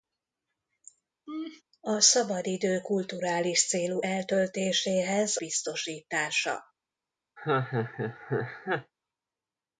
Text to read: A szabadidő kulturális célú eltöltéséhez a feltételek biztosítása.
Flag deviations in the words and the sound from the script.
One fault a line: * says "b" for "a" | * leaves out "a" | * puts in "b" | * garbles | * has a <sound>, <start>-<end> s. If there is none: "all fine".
* has a laugh, 1.3-1.6 s
* leaves out "a feltételek"
* has a laugh, 7.4-8.9 s